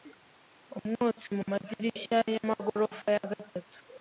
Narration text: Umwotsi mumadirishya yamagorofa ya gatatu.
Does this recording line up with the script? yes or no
yes